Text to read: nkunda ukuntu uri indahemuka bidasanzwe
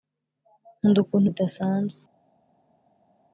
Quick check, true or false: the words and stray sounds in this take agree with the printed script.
false